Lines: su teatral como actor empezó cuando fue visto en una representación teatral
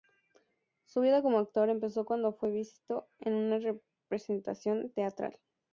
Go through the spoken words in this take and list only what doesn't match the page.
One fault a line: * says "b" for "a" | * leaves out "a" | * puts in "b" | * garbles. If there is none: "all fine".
* says "vida" for "teatral"